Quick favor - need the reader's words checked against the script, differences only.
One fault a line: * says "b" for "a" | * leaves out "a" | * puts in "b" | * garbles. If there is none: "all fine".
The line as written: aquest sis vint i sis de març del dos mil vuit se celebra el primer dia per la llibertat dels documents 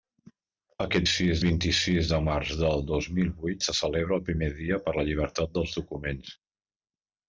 all fine